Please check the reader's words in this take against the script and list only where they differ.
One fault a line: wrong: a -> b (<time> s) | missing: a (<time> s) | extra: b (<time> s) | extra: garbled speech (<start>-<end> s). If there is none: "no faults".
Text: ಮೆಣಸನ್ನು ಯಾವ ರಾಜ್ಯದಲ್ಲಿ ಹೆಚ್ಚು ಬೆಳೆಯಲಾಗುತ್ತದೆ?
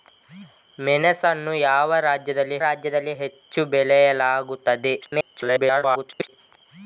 extra: ರಾಜ್ಯದಲ್ಲಿ (2.6 s)
extra: garbled speech (5.0-6.3 s)